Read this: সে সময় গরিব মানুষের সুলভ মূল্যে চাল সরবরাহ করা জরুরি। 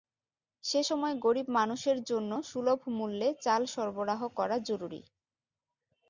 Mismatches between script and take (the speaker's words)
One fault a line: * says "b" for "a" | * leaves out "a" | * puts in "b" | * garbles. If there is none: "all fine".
* puts in "জন্য"